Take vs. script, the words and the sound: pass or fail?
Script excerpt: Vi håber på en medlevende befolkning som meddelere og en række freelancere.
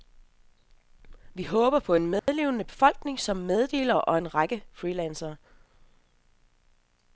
fail